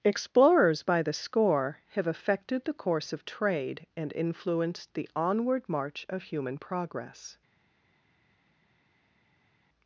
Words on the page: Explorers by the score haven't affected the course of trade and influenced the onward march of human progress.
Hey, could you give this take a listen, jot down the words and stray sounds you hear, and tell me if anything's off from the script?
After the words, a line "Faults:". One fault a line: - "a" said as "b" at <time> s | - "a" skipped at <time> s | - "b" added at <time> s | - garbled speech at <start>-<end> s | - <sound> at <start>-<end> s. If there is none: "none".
Explorers by the score have affected the course of trade and influenced the onward march of human progress.
Faults:
- "haven't" said as "have" at 1.9 s